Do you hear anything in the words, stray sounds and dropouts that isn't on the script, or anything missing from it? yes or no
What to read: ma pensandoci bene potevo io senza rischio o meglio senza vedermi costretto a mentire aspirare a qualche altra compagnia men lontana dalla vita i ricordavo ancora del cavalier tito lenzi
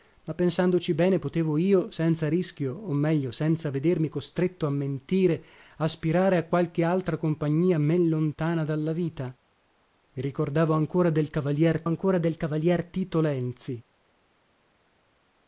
yes